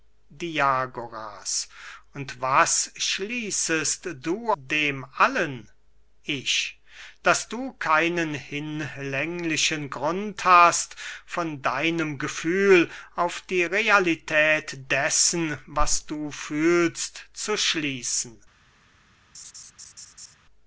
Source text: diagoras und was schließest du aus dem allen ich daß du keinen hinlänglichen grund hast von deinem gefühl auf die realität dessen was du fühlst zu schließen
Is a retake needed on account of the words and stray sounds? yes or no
yes